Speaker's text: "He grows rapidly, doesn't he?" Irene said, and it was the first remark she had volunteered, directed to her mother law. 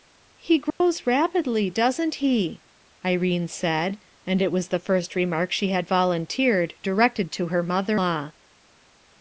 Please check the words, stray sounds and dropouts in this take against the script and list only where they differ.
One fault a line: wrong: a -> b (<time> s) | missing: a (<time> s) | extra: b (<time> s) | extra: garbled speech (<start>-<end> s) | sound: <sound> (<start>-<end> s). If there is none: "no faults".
sound: dropout (0.7-0.8 s)